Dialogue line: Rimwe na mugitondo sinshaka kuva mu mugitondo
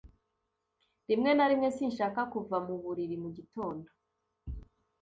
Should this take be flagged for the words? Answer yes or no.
yes